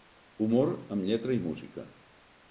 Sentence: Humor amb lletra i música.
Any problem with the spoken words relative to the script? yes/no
no